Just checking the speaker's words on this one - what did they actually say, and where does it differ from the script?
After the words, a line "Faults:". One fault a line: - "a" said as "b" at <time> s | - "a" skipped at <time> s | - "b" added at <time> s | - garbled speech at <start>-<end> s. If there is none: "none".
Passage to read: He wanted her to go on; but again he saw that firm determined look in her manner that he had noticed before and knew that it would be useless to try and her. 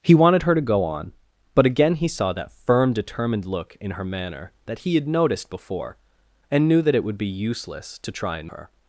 He wanted her to go on; but again he saw that firm determined look in her manner that he had noticed before and knew that it would be useless to try and her.
Faults:
none